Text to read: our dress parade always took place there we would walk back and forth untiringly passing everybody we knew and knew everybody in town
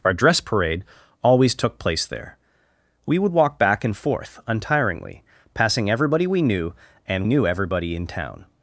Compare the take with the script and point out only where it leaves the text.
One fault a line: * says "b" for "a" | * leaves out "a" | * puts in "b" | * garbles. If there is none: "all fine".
all fine